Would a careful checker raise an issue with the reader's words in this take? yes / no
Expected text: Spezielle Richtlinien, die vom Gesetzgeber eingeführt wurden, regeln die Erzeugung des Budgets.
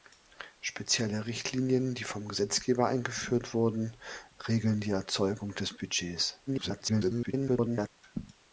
yes